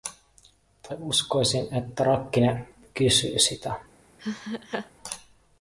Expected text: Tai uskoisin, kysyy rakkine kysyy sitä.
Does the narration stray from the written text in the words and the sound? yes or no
yes